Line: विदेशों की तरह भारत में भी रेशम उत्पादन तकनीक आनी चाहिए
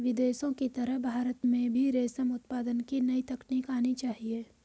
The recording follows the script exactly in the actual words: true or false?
false